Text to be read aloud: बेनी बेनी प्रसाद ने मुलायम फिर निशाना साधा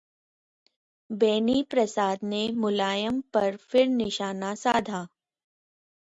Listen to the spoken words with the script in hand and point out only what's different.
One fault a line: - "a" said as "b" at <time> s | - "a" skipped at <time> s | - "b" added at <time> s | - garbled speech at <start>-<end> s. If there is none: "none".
- "बेनी" skipped at 1.6 s
- "पर" added at 3.3 s